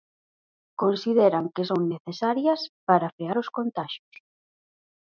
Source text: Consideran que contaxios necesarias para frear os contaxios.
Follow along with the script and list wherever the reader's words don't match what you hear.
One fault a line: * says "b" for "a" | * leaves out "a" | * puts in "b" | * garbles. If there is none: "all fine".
* says "son" for "contaxios"